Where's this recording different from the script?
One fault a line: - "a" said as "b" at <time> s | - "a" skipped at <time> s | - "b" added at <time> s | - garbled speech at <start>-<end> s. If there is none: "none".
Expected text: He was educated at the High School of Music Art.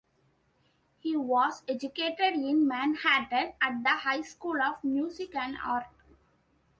- "in Manhattan" added at 2.3 s
- "and" added at 5.3 s